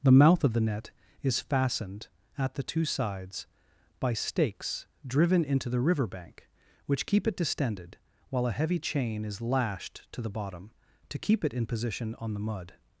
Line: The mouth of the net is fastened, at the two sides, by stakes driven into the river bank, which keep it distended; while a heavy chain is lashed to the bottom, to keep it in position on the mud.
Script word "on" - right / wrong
right